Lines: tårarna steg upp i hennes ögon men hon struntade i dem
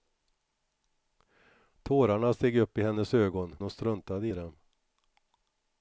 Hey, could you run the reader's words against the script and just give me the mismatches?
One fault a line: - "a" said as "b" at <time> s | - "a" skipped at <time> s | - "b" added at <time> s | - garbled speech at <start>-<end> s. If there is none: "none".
- "men" skipped at 3.5 s